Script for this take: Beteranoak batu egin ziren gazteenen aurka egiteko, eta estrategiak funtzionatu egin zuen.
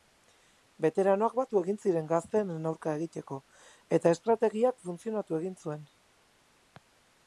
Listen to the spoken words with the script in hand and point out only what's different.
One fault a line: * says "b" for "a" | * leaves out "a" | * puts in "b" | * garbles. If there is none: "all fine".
all fine